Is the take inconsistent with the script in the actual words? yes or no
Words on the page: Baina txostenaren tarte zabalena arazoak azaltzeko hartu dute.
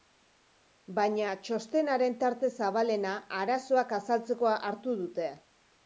no